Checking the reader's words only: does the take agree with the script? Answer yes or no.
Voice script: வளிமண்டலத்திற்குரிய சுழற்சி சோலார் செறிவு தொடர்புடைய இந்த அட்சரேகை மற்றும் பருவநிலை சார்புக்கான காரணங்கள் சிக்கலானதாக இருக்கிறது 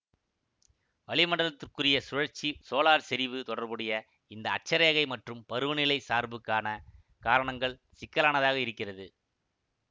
yes